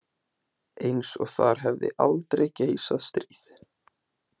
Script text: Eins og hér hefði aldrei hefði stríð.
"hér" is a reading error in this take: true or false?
true